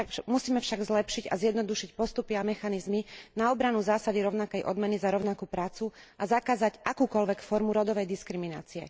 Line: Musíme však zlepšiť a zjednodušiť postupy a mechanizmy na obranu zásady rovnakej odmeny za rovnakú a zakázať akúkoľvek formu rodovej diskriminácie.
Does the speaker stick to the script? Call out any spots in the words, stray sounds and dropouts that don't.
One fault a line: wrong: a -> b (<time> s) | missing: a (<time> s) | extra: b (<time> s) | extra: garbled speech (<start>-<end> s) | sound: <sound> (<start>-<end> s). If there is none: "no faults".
extra: prácu (5.5 s)